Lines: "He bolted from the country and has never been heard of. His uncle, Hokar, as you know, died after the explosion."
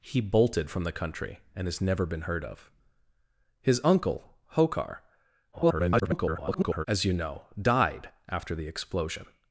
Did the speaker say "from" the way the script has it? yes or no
yes